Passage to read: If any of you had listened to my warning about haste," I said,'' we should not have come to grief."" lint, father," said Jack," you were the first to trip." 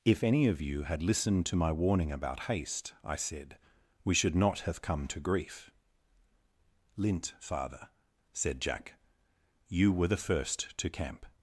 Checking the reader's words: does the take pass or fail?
fail